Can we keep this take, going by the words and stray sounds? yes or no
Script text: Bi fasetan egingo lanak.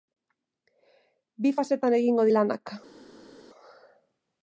yes